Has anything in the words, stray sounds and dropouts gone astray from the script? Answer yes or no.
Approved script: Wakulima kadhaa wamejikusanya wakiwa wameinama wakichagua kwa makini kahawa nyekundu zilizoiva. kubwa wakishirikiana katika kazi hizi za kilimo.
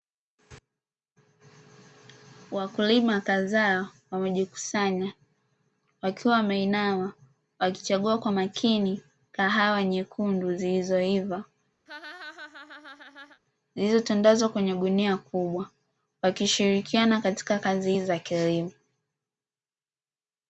yes